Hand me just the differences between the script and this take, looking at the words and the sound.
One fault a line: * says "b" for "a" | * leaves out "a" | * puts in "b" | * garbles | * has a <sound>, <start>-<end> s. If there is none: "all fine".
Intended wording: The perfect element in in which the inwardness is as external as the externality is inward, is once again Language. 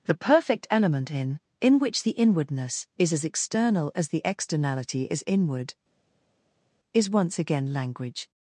all fine